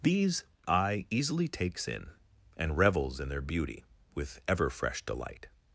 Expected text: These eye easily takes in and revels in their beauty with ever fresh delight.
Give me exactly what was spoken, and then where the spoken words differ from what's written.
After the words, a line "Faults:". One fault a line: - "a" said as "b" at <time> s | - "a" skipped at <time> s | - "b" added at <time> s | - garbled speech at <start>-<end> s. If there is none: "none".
These eye easily takes in and revels in their beauty with ever fresh delight.
Faults:
none